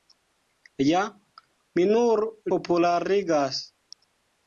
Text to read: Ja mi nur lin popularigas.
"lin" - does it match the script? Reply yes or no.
no